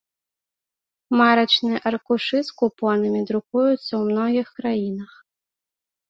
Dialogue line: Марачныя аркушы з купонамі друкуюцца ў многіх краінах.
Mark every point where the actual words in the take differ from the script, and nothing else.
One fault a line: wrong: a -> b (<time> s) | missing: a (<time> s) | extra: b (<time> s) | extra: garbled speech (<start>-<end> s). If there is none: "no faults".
no faults